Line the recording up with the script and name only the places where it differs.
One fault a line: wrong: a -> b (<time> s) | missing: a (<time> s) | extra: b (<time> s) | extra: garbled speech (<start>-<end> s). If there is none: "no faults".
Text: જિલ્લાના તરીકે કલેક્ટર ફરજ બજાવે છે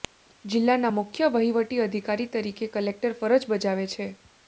extra: મુખ્ય વહીવટી અધિકારી (0.9 s)